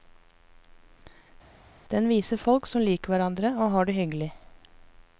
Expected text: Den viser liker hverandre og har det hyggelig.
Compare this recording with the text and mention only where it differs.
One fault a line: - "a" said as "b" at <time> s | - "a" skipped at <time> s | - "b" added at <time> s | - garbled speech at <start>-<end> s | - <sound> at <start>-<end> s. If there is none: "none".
- "folk som" added at 2.4 s